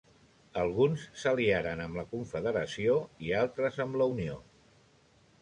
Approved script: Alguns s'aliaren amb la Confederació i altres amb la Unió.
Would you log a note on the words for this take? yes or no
no